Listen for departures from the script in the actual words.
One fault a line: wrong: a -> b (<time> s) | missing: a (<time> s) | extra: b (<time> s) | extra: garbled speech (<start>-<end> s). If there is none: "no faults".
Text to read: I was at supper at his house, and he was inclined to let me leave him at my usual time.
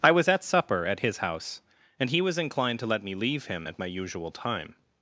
no faults